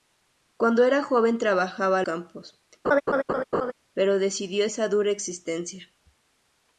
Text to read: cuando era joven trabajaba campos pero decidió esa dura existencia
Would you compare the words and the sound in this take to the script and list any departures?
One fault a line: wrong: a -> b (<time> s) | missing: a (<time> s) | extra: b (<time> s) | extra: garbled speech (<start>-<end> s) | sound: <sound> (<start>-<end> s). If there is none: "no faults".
sound: laugh (2.8-3.7 s)